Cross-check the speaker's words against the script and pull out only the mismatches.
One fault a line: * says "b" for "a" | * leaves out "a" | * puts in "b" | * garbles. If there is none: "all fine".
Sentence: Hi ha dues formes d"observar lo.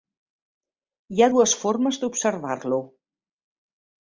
all fine